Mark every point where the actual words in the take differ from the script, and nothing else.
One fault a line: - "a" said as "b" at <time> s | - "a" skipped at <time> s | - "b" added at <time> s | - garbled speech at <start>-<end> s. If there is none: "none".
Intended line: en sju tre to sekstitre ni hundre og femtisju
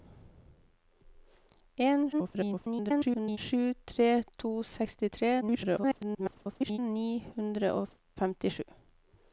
- garbled speech at 2.1-3.4 s
- garbled speech at 5.4-6.8 s